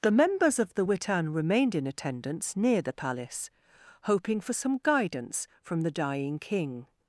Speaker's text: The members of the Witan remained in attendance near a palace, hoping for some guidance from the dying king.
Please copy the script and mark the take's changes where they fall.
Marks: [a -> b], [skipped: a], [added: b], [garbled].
The members of the Witan remained in attendance near [a -> the] palace, hoping for some guidance from the dying king.